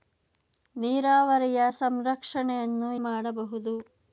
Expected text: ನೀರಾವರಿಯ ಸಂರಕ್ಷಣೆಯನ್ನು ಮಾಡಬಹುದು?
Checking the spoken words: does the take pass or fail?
pass